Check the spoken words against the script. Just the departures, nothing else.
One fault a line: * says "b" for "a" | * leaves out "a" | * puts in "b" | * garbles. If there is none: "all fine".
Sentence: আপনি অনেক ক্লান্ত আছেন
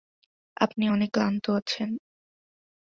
all fine